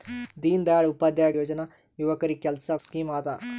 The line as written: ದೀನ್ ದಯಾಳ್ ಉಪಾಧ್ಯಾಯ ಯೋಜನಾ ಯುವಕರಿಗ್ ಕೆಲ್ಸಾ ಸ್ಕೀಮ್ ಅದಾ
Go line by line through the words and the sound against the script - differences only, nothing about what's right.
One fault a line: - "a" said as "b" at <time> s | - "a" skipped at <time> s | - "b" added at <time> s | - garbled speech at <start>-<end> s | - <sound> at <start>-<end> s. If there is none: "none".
none